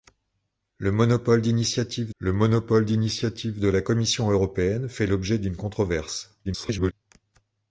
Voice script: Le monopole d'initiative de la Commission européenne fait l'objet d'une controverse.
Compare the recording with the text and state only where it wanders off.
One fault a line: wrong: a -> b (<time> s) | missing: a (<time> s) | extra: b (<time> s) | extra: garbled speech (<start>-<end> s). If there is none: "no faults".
extra: le monopole d'initiative (2.2 s)
extra: garbled speech (6.4-6.9 s)